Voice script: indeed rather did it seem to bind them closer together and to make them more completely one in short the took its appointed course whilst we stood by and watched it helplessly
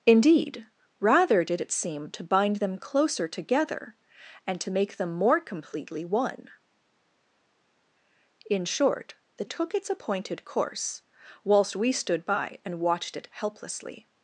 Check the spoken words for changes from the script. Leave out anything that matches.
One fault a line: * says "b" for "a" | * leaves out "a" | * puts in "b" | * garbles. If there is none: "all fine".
all fine